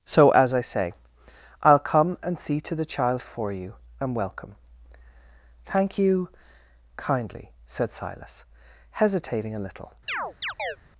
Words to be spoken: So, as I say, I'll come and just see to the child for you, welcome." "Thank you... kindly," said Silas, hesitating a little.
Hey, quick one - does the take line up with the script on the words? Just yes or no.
no